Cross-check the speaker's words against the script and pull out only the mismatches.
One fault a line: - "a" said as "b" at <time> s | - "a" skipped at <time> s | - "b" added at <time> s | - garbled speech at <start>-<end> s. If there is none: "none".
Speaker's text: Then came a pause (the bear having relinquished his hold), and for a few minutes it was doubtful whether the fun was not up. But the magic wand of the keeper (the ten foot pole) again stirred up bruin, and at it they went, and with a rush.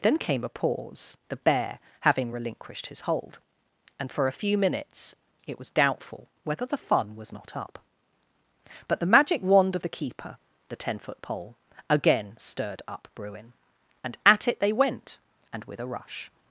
none